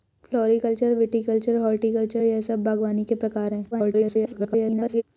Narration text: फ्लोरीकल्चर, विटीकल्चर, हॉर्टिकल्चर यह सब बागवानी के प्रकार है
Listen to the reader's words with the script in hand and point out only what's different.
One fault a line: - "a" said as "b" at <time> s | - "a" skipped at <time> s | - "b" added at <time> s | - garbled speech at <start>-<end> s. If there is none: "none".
- garbled speech at 3.7-5.0 s